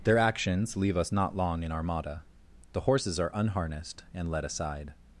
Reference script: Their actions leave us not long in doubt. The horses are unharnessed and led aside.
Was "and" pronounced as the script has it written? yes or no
yes